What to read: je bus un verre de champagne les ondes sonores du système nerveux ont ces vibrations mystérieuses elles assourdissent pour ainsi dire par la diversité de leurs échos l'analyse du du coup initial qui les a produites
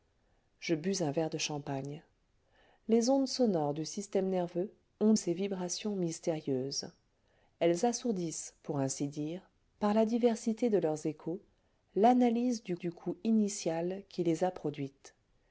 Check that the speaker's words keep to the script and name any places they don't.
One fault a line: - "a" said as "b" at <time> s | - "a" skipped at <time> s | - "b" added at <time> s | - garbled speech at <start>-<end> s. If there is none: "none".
none